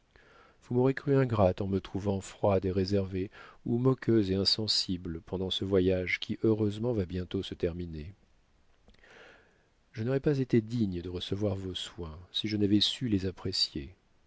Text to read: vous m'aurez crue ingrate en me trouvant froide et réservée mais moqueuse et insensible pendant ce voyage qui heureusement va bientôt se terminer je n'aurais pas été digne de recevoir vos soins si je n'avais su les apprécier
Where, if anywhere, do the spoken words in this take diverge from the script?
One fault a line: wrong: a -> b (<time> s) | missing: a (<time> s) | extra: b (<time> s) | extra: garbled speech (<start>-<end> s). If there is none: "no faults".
wrong: mais -> ou (3.7 s)